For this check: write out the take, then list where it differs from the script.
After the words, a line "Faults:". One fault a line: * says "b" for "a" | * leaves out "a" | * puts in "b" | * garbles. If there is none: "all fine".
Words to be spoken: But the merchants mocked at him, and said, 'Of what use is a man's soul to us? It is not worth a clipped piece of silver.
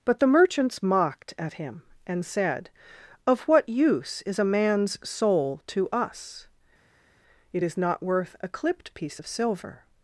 But the merchants mocked at him, and said, 'Of what use is a man's soul to us? It is not worth a clipped piece of silver.
Faults:
all fine